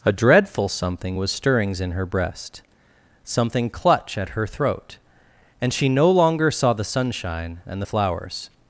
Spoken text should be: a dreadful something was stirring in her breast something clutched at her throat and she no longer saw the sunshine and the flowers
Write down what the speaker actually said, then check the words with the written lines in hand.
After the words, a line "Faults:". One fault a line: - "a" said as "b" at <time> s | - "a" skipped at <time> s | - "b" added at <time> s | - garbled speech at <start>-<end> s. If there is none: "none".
a dreadful something was stirrings in her breast something clutch at her throat and she no longer saw the sunshine and the flowers
Faults:
- "stirring" said as "stirrings" at 1.3 s
- "clutched" said as "clutch" at 3.7 s